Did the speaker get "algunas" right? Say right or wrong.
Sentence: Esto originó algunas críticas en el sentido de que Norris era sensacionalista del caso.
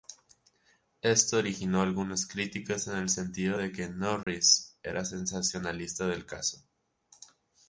right